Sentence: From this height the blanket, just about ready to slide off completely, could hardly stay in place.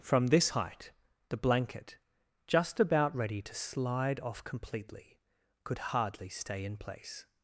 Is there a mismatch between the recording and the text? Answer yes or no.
no